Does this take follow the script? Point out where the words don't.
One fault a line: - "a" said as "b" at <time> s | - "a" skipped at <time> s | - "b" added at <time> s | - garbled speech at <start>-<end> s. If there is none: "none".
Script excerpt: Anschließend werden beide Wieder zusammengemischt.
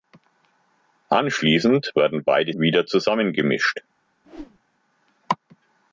none